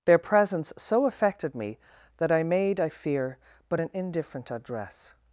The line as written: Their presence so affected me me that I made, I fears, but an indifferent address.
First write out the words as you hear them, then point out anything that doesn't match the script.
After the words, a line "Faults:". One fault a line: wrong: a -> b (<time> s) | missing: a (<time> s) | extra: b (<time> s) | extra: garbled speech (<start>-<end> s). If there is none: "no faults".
Their presence so affected me that I made, I fear, but an indifferent address.
Faults:
missing: me (1.8 s)
wrong: fears -> fear (2.9 s)